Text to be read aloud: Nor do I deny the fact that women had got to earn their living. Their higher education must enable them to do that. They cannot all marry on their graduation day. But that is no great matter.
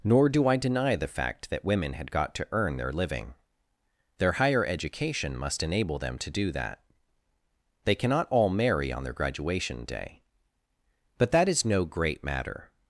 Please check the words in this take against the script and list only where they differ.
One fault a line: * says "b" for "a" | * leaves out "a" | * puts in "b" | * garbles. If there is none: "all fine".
all fine